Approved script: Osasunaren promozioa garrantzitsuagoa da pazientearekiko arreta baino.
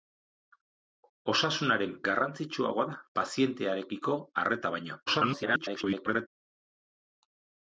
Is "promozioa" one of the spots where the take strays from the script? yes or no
yes